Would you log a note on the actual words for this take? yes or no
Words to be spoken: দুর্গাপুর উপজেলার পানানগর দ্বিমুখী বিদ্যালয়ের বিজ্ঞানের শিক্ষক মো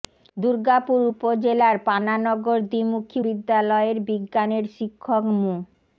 no